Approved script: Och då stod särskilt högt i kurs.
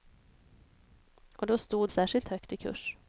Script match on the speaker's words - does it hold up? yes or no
yes